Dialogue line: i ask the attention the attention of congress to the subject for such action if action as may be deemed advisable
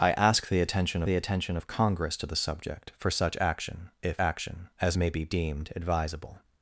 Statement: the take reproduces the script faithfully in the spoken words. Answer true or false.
true